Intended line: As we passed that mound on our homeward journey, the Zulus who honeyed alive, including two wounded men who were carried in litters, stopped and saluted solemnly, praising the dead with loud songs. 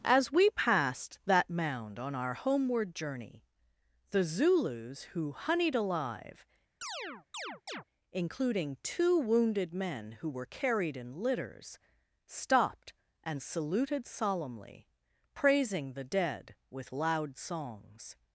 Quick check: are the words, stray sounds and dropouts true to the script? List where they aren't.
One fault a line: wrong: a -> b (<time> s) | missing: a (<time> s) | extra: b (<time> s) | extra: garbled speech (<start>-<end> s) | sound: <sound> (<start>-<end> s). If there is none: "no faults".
sound: chirp (6.8-7.8 s)